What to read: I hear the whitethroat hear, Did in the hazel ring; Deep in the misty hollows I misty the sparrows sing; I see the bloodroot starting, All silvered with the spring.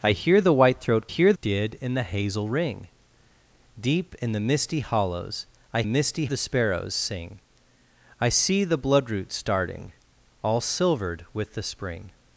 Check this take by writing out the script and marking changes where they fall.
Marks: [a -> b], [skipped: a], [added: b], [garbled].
I hear the whitethroat hear, Did in the hazel ring; Deep in the misty hollows I misty the sparrows sing; I see the bloodroot starting, All silvered with the spring.